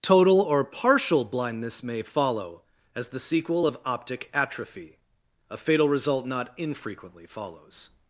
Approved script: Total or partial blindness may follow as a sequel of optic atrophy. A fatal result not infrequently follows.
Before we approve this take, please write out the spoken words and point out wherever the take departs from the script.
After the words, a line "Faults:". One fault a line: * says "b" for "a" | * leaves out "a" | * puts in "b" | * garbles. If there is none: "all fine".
Total or partial blindness may follow as the sequel of optic atrophy. A fatal result not infrequently follows.
Faults:
* says "the" for "a"